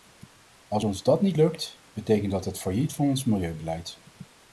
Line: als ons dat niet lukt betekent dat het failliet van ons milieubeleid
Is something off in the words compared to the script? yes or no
no